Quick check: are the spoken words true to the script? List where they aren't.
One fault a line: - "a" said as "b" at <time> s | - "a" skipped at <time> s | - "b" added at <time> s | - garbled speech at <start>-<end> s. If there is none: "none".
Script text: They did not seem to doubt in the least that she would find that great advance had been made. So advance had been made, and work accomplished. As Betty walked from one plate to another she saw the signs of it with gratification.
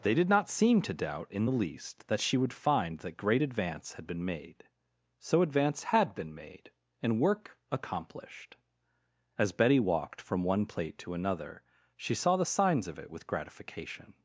none